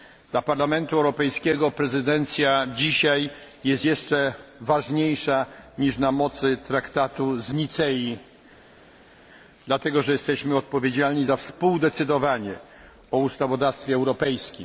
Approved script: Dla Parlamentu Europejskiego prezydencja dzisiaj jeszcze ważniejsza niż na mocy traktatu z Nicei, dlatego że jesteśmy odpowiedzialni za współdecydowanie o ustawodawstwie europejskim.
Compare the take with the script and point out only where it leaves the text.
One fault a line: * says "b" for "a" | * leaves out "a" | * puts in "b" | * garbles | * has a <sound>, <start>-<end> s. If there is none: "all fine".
* puts in "jest"